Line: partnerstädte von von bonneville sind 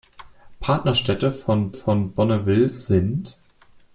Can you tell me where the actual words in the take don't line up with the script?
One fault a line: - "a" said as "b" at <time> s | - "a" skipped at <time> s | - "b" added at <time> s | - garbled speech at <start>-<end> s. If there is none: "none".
none